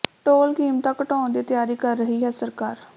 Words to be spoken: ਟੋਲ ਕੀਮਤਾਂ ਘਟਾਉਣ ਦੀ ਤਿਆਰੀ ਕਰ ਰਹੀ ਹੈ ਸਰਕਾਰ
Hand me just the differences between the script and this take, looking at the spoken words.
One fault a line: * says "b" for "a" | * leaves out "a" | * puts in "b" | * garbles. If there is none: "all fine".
all fine